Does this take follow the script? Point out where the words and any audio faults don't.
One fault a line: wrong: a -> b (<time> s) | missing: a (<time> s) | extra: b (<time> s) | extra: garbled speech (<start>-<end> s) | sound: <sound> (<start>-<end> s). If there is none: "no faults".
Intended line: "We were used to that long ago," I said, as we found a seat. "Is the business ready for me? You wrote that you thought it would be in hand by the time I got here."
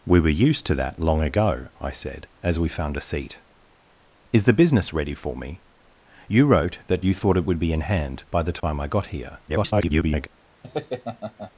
sound: dropout (8.6-8.6 s)
extra: garbled speech (9.5-10.3 s)
sound: laugh (10.6-11.5 s)